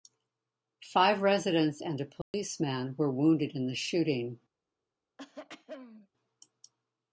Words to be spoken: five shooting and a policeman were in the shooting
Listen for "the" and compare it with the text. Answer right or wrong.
right